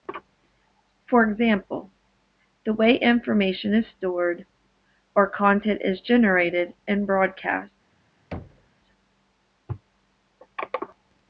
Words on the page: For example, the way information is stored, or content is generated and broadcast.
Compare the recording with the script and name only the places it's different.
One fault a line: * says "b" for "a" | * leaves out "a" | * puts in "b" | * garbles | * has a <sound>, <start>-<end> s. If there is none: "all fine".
* has a thud, 8.3-8.7 s